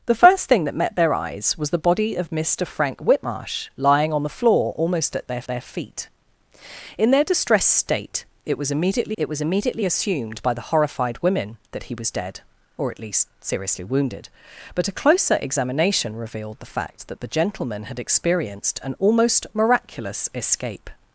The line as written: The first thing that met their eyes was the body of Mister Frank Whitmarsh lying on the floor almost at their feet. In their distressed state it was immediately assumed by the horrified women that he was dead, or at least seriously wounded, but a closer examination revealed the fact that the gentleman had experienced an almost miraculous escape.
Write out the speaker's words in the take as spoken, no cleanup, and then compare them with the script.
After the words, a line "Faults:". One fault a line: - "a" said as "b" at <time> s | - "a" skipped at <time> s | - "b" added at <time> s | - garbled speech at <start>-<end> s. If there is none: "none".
The first thing that met their eyes was the body of Mister Frank Whitmarsh lying on the floor almost at their their feet. In their distressed state it was immediately it was immediately assumed by the horrified women that he was dead, or at least seriously wounded, but a closer examination revealed the fact that the gentleman had experienced an almost miraculous escape.
Faults:
- "their" added at 5.5 s
- "it was immediately" added at 9.2 s